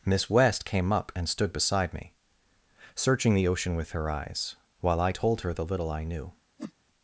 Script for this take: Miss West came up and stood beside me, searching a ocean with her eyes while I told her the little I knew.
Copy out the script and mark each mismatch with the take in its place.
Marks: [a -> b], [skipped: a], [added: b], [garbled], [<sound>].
Miss West came up and stood beside me, searching [a -> the] ocean with her eyes while I told her the little I knew. [whoosh]